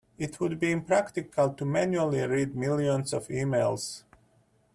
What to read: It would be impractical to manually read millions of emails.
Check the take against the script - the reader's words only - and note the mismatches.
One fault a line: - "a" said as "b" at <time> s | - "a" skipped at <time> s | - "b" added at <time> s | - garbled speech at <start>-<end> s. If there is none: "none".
none